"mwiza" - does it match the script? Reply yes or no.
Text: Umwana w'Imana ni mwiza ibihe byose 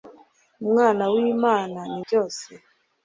no